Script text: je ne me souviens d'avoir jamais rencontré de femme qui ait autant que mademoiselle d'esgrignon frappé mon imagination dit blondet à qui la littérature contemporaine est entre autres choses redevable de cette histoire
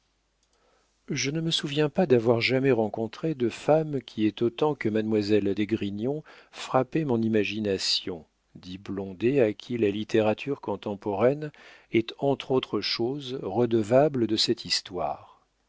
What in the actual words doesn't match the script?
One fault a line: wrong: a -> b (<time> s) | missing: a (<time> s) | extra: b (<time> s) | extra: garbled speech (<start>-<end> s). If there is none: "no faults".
extra: pas (1.9 s)